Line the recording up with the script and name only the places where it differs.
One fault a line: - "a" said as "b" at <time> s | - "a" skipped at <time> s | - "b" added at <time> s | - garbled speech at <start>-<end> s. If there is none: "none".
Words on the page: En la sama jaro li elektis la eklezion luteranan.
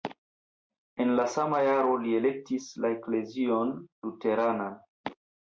none